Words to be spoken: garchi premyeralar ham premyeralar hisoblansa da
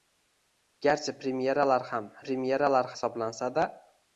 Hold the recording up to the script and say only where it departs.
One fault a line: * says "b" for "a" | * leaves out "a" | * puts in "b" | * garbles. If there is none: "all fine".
all fine